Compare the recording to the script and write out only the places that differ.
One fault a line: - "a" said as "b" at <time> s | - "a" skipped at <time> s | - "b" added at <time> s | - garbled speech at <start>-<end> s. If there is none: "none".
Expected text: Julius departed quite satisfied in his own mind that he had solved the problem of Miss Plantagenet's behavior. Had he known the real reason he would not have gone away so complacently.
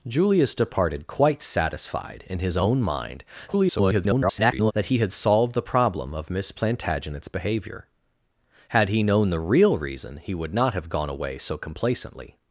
- garbled speech at 3.5-4.7 s